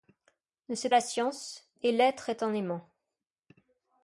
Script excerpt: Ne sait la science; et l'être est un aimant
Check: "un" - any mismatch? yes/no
no